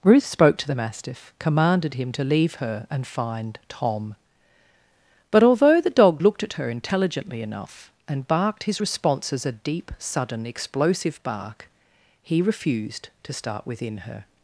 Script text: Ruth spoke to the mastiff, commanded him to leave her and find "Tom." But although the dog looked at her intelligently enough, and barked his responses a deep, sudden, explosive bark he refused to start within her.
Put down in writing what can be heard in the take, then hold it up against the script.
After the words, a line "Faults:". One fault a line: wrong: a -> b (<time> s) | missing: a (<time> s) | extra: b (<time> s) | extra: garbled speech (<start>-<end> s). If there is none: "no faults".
Ruth spoke to the mastiff, commanded him to leave her and find "Tom." But although the dog looked at her intelligently enough, and barked his responses a deep, sudden, explosive bark he refused to start within her.
Faults:
no faults